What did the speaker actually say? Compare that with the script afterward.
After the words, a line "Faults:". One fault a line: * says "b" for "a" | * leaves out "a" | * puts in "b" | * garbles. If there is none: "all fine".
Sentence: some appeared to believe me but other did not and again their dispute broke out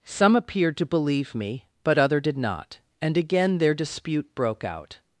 some appeared to believe me but other did not and again their dispute broke out
Faults:
all fine